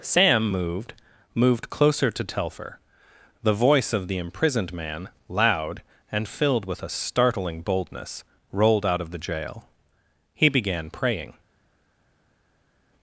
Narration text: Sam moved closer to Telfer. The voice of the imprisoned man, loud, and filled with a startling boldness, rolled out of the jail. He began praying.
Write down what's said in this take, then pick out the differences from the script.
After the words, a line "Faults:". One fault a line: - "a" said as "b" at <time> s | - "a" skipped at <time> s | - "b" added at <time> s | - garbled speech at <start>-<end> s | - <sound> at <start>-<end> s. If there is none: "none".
Sam moved moved closer to Telfer. The voice of the imprisoned man, loud, and filled with a startling boldness, rolled out of the jail. He began praying.
Faults:
- "moved" added at 1.3 s